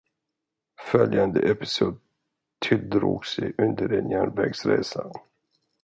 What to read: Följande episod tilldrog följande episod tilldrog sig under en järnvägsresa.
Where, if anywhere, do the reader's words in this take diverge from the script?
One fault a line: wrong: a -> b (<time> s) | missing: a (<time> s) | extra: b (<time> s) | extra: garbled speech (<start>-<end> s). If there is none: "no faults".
missing: följande episod tilldrog (3.2 s)